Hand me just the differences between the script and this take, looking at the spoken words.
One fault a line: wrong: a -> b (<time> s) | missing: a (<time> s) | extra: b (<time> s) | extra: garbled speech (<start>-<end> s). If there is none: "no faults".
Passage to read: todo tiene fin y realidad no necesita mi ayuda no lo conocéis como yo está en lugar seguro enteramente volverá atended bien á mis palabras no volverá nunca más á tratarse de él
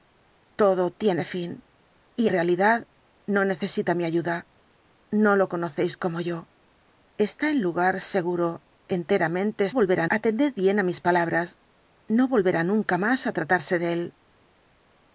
no faults